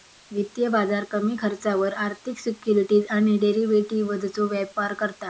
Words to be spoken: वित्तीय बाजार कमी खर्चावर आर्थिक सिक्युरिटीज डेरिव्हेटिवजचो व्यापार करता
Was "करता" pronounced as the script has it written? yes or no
yes